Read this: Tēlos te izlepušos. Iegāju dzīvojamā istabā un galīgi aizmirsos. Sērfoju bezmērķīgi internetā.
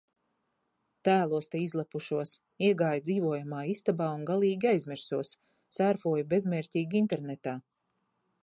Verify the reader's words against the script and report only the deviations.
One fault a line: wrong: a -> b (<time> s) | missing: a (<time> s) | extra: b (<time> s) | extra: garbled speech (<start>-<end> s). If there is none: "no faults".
no faults